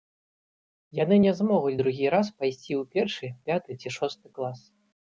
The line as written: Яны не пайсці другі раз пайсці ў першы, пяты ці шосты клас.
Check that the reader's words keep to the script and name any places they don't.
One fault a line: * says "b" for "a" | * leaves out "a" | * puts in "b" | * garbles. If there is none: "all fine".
* says "змогуць" for "пайсці"